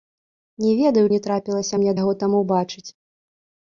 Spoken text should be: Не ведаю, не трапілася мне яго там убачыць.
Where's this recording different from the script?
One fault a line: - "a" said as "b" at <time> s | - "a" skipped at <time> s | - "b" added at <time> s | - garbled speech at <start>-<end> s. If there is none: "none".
none